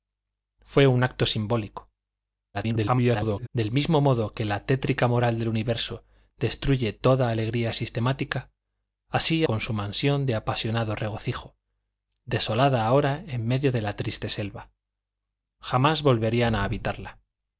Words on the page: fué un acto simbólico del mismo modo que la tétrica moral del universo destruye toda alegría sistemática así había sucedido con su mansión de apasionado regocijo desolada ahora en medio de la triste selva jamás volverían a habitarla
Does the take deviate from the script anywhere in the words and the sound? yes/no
yes